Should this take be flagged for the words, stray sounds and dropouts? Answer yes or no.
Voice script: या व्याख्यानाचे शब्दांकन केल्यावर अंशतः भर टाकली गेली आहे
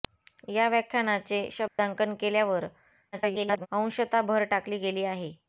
yes